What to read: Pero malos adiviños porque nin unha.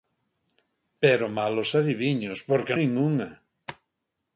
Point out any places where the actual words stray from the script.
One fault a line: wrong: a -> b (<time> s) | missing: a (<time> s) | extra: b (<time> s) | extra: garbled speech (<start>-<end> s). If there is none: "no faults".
no faults